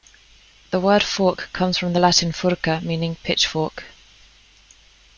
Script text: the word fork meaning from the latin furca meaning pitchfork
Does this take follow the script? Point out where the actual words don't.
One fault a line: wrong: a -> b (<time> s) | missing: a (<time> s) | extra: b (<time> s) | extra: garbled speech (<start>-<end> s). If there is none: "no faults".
wrong: meaning -> comes (1.5 s)